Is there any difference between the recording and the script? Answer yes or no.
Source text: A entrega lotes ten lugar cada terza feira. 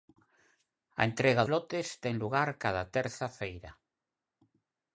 no